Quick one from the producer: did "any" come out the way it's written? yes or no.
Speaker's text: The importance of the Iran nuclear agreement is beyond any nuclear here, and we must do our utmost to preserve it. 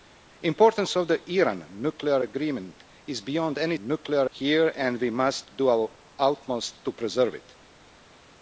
yes